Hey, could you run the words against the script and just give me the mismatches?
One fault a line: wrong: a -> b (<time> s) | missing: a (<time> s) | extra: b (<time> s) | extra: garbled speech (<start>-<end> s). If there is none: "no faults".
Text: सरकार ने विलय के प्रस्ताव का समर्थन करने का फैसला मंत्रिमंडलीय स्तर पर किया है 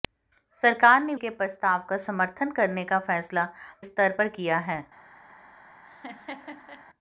missing: विलय (1.1 s)
missing: मंत्रिमंडलीय (3.5 s)